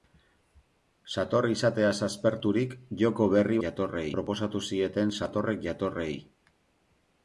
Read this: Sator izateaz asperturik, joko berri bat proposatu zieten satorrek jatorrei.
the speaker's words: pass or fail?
fail